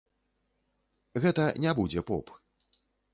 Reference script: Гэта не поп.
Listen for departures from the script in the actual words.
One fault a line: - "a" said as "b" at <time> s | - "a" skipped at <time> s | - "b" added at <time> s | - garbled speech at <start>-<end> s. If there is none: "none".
- "будзе" added at 1.8 s